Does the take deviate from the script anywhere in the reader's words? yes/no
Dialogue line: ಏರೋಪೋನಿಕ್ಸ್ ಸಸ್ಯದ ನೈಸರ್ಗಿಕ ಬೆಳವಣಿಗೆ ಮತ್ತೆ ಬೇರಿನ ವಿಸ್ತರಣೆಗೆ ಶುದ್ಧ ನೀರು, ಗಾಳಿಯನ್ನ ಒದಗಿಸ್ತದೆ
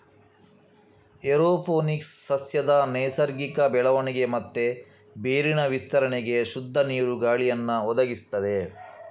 no